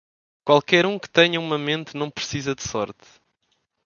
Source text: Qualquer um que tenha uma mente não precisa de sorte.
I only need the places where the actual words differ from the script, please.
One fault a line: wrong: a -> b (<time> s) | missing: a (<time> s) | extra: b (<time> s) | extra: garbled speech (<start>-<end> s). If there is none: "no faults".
no faults